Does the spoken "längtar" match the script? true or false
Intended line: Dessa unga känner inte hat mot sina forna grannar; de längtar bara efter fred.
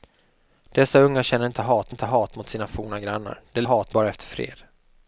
false